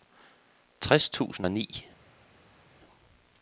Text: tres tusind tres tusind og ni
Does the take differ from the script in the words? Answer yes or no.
yes